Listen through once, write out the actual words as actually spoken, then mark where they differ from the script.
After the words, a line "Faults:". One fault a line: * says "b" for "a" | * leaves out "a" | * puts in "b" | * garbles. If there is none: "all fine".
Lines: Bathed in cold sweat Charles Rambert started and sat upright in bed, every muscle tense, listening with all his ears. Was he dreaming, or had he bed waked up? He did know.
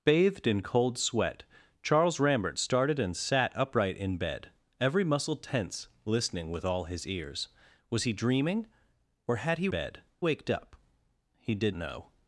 Bathed in cold sweat Charles Rambert started and sat upright in bed, every muscle tense, listening with all his ears. Was he dreaming, or had he bed waked up? He did know.
Faults:
all fine